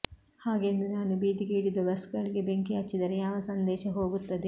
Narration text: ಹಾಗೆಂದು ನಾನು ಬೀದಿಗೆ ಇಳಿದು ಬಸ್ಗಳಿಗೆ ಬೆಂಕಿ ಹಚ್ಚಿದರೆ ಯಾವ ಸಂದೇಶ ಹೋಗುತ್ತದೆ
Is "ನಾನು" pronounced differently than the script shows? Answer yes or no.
no